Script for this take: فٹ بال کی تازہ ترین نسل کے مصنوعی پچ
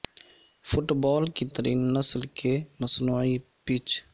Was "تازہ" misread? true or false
true